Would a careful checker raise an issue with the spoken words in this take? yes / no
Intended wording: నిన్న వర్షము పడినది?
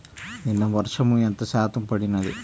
yes